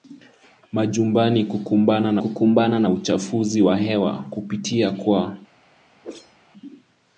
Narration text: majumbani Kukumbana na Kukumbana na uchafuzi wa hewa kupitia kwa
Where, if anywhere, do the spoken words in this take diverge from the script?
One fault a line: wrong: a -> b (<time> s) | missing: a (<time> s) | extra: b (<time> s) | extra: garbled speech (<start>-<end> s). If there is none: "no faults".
no faults